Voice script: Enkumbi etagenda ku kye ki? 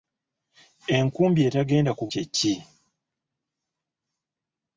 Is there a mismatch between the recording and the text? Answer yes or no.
no